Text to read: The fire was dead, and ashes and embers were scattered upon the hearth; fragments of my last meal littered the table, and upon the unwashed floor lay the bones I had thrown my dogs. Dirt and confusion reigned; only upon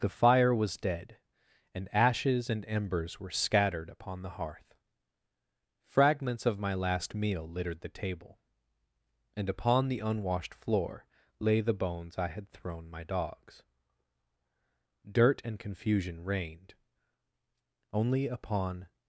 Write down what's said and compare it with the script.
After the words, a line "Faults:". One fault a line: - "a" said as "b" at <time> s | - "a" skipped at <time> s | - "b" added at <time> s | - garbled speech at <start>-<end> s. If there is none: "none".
The fire was dead, and ashes and embers were scattered upon the hearth; fragments of my last meal littered the table, and upon the unwashed floor lay the bones I had thrown my dogs. Dirt and confusion reigned; only upon
Faults:
none